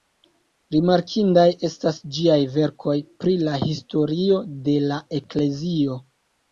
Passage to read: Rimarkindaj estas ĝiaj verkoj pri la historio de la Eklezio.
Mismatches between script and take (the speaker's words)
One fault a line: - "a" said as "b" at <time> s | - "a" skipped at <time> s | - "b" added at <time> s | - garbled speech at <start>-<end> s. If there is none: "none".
none